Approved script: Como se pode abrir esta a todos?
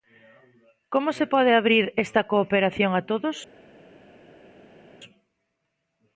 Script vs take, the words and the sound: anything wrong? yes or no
yes